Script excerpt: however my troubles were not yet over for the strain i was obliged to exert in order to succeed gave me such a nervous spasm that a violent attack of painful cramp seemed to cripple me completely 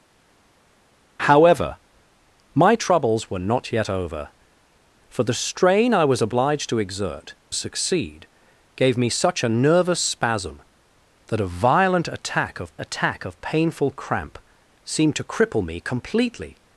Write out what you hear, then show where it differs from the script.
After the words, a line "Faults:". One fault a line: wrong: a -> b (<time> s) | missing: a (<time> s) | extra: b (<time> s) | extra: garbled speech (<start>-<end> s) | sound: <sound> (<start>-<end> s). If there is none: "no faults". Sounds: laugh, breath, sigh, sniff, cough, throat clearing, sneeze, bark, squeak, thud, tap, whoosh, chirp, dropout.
however my troubles were not yet over for the strain i was obliged to exert succeed gave me such a nervous spasm that a violent attack of attack of painful cramp seemed to cripple me completely
Faults:
missing: in order to (7.3 s)
extra: attack of (12.8 s)